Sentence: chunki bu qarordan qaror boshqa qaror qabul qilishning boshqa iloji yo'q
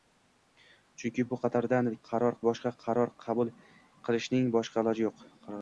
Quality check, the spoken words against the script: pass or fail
pass